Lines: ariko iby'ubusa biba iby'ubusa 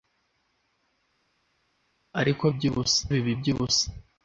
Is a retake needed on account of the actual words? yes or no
no